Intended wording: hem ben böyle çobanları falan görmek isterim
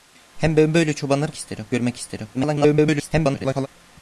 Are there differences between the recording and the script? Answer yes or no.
yes